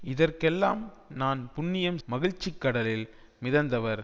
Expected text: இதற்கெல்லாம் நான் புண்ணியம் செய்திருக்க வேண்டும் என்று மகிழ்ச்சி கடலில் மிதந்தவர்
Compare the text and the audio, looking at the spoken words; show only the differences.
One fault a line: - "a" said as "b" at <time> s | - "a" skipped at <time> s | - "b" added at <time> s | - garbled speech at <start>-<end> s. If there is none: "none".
- "செய்திருக்க வேண்டும் என்று" skipped at 2.0 s